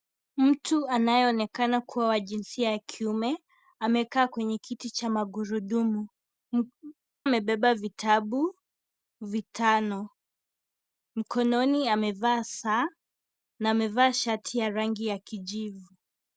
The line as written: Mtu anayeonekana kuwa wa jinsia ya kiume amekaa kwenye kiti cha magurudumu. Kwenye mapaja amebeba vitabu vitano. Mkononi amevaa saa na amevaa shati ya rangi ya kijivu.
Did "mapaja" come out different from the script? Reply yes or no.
yes